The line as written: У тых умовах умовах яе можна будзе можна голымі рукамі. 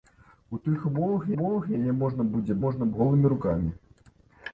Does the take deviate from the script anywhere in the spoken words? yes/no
no